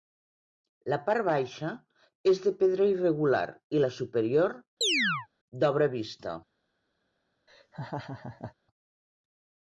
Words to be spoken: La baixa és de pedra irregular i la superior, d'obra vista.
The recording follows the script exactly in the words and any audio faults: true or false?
false